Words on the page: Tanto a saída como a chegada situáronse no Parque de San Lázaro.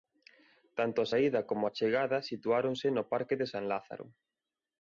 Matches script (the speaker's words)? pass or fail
pass